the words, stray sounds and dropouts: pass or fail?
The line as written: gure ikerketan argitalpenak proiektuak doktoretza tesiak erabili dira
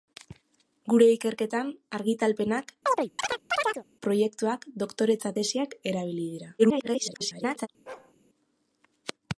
fail